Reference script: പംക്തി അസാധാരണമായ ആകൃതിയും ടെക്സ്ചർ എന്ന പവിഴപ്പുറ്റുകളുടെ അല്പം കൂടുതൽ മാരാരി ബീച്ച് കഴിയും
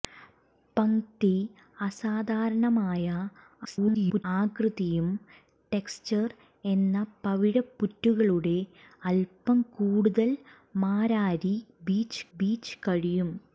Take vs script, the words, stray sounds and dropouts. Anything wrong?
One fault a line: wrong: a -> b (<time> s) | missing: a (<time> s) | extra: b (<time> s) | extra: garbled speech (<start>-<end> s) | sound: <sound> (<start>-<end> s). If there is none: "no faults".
extra: garbled speech (3.6-4.2 s)
extra: ബീച്ച് (12.4 s)